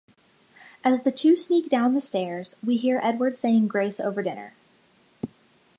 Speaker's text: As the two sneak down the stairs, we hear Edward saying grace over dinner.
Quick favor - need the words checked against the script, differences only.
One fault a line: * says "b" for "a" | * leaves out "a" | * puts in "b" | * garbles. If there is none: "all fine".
all fine